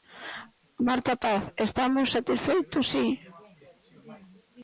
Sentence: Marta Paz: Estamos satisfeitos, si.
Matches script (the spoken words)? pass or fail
pass